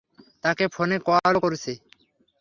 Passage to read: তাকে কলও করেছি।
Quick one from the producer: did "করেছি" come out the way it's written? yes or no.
yes